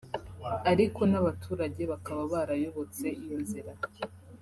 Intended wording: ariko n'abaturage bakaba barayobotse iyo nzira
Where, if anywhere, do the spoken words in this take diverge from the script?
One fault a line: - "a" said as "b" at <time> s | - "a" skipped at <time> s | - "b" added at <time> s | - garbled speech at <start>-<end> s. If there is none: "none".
none